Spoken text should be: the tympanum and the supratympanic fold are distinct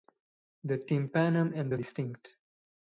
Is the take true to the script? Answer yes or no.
no